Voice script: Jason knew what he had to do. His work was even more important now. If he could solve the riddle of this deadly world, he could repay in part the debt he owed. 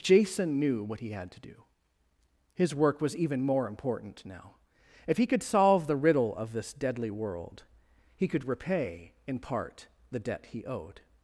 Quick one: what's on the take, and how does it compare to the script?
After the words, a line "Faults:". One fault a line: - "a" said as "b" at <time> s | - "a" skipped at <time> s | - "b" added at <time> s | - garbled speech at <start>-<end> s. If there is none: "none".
Jason knew what he had to do. His work was even more important now. If he could solve the riddle of this deadly world, he could repay in part the debt he owed.
Faults:
none